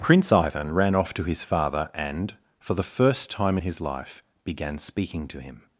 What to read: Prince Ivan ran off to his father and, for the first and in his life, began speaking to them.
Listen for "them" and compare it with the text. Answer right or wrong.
wrong